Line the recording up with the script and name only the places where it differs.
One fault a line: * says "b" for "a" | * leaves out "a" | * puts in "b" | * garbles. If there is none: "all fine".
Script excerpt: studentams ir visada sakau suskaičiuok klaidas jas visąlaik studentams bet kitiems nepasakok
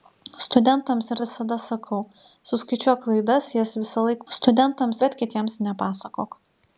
all fine